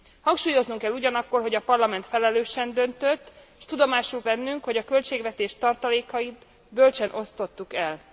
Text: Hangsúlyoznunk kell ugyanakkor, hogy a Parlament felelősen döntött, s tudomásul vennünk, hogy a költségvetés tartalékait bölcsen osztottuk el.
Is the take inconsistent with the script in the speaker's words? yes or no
no